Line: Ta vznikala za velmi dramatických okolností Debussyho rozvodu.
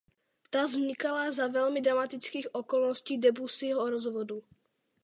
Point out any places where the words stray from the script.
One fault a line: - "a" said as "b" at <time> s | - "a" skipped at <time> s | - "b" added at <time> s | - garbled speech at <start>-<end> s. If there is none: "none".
none